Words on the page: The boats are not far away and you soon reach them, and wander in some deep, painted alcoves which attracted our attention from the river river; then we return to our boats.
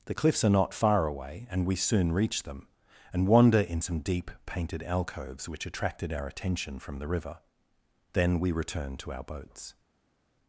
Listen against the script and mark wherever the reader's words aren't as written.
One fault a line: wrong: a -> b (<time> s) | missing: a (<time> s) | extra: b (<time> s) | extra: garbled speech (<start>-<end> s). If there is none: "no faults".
wrong: boats -> cliffs (0.1 s)
wrong: you -> we (1.6 s)
missing: river (7.4 s)